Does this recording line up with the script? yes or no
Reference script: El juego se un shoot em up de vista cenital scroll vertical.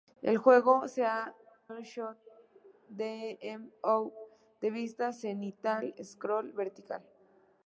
yes